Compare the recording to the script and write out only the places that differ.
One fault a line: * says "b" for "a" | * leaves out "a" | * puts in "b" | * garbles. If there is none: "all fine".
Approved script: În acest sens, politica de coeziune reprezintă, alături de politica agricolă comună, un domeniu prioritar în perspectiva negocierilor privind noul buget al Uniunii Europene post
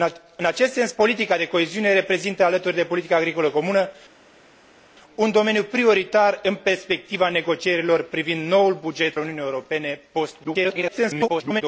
* leaves out "al"
* garbles